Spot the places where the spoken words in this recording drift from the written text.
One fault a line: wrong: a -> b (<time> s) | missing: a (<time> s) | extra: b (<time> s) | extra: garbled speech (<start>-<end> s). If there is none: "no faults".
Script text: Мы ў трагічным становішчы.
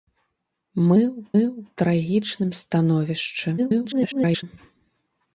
extra: ў (1.4 s)
extra: garbled speech (3.6-4.4 s)